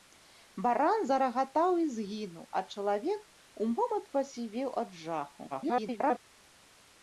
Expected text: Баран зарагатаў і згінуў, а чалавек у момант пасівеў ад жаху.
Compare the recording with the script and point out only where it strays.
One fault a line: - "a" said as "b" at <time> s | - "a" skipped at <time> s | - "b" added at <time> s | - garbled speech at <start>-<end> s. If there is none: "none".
- garbled speech at 5.5-6.2 s